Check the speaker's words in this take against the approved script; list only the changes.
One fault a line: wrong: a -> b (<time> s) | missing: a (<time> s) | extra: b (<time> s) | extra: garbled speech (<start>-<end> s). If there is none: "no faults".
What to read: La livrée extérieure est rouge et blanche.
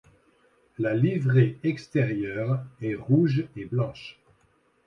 no faults